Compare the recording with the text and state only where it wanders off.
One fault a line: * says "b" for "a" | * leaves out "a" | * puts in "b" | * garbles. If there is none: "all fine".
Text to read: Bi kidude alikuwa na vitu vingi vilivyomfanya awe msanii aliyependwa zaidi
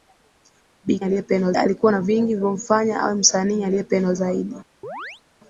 * says "aliyependwa" for "kidude"
* leaves out "vitu"